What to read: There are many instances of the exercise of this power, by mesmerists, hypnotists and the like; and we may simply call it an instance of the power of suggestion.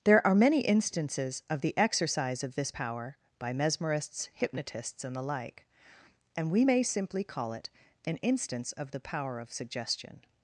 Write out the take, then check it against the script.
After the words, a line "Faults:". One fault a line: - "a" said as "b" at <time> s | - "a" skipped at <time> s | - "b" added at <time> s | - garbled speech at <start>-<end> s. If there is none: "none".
There are many instances of the exercise of this power, by mesmerists, hypnotists and the like; and we may simply call it an instance of the power of suggestion.
Faults:
none